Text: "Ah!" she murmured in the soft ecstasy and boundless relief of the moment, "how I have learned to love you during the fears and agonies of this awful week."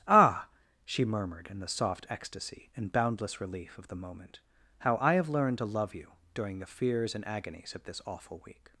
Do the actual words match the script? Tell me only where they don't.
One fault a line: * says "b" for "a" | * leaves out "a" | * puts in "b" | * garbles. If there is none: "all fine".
all fine